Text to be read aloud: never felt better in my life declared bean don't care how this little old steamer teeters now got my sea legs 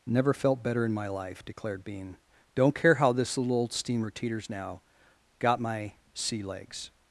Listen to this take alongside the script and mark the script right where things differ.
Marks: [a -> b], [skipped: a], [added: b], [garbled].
never felt better in my life declared bean don't care how this little old steamer teeters now got my sea legs